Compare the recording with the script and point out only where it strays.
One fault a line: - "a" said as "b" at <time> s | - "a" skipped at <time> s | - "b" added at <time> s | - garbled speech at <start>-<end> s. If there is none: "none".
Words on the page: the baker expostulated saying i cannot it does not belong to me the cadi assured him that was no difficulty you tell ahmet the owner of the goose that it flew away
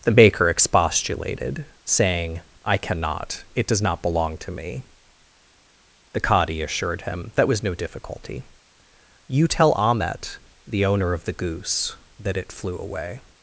none